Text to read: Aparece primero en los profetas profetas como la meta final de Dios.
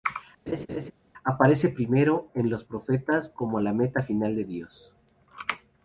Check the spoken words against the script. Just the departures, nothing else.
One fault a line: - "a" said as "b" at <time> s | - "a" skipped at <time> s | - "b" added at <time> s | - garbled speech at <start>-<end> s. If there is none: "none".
- "profetas" skipped at 3.3 s